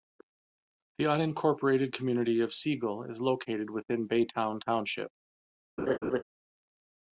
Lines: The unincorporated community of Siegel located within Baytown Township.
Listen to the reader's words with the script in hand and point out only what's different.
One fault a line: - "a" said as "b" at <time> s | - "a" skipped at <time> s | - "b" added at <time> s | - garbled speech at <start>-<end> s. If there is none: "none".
- "is" added at 3.0 s